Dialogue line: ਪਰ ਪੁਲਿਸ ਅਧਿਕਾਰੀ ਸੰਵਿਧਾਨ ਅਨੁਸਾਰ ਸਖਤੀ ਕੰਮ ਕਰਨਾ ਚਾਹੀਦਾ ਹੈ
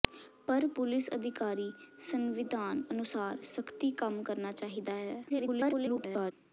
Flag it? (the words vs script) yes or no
yes